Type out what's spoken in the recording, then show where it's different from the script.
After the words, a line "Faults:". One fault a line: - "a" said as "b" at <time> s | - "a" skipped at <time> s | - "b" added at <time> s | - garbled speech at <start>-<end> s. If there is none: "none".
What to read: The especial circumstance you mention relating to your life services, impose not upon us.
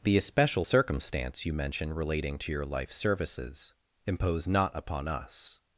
The especial circumstance you mention relating to your life services, impose not upon us.
Faults:
none